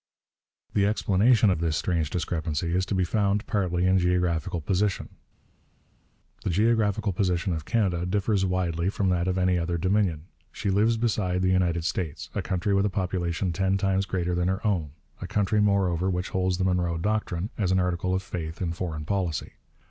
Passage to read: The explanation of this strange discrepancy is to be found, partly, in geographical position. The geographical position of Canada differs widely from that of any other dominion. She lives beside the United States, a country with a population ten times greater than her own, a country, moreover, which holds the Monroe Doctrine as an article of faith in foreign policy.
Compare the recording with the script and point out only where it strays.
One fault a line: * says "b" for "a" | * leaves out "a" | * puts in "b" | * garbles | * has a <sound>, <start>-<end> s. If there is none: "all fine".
all fine